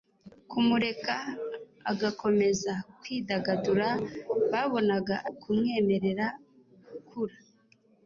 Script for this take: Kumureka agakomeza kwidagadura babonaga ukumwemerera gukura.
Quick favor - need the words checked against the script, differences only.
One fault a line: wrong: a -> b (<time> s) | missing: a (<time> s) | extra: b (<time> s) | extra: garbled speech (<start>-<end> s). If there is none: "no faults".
no faults